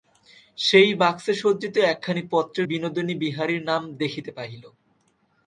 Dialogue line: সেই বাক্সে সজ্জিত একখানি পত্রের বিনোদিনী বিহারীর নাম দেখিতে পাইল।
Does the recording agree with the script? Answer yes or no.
yes